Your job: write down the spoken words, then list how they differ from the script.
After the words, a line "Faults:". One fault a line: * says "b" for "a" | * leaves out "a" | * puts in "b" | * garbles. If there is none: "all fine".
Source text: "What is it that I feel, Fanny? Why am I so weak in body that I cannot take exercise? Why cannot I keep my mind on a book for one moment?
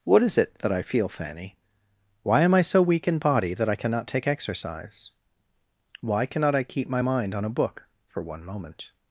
"What is it that I feel, Fanny? Why am I so weak in body that I cannot take exercise? Why cannot I keep my mind on a book for one moment?
Faults:
all fine